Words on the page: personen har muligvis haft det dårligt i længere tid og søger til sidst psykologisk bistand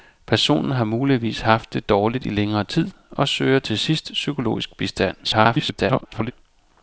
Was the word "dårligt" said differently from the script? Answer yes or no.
no